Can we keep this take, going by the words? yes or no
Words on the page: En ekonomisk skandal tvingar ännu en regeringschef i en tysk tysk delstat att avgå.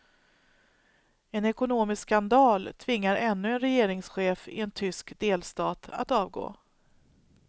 no